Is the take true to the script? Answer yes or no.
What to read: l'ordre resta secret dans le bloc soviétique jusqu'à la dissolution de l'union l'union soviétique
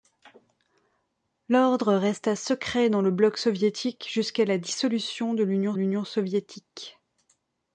yes